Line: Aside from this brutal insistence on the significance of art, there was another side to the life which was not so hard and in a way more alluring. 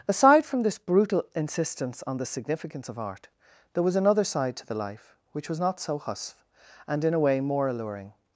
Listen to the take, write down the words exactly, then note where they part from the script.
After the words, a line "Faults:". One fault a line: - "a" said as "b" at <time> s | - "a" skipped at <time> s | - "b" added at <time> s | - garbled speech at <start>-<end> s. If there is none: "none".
Aside from this brutal insistence on the significance of art, there was another side to the life which was not so husf and in a way more alluring.
Faults:
- "hard" said as "husf" at 6.0 s